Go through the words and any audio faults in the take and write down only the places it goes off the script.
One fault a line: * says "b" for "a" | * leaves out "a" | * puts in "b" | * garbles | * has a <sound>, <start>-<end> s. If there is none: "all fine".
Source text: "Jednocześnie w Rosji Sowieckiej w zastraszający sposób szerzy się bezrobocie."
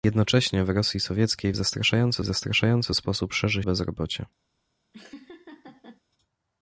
* puts in "zastraszający"
* leaves out "się"
* has a laugh, 4.9-6.0 s